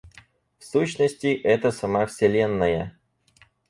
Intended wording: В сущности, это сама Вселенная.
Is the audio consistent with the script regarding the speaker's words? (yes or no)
yes